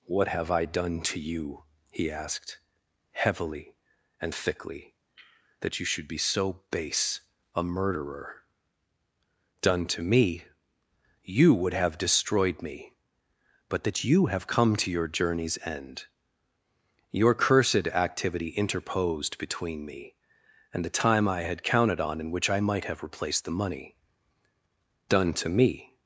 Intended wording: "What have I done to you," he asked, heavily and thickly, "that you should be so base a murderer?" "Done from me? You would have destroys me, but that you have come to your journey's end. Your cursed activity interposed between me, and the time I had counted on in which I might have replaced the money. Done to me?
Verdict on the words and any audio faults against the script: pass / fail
fail